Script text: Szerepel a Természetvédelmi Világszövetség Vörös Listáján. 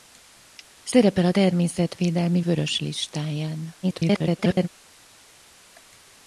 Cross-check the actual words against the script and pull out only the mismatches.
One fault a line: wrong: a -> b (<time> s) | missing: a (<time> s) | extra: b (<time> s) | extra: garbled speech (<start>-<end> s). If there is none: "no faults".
missing: Világszövetség (2.4 s)
extra: garbled speech (3.8-4.7 s)